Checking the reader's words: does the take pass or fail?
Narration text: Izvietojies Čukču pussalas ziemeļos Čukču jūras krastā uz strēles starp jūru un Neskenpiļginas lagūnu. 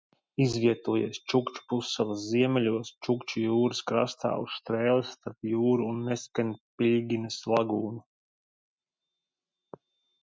pass